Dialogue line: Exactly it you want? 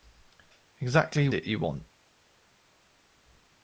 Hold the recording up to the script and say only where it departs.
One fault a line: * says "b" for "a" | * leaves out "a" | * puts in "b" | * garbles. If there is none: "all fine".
all fine